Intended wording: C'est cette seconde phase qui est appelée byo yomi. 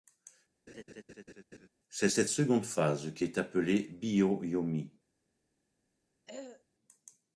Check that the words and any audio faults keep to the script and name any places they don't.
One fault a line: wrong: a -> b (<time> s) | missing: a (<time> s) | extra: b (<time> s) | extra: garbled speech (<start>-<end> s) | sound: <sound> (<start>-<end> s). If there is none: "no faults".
sound: laugh (0.7-1.7 s)
sound: throat clearing (6.3-6.6 s)